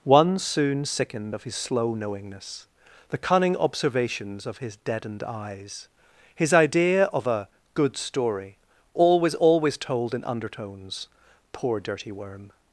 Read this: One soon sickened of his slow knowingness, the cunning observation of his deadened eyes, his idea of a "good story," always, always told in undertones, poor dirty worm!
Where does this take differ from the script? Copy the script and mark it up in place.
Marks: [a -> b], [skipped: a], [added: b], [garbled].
One soon sickened of his slow knowingness, the cunning [observation -> observations] of his deadened eyes, his idea of a "good story," always, always told in undertones, poor dirty worm!